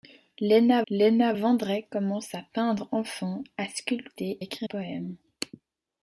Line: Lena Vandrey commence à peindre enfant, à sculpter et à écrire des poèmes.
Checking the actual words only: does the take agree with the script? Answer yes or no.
no